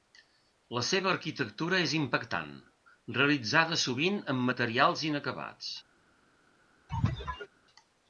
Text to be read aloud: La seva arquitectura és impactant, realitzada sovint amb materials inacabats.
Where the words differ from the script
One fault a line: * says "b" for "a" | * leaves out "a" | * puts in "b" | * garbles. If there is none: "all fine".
all fine